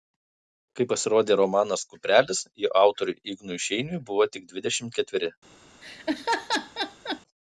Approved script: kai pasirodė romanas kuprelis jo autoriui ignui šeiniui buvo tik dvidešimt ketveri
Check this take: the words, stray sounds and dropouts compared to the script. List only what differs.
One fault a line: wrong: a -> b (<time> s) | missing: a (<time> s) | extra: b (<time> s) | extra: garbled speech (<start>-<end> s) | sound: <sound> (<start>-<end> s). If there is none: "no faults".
sound: laugh (5.8-7.2 s)